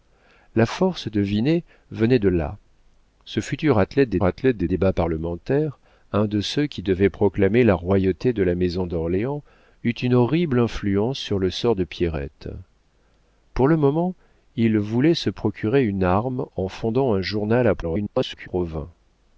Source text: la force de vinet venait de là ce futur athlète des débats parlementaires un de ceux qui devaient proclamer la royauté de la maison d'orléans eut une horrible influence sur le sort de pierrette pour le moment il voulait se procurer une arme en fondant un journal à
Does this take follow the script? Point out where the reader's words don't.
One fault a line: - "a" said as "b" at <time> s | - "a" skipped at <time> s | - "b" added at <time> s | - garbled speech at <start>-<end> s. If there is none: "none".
- "athlète des" added at 4.2 s
- garbled speech at 17.8-18.5 s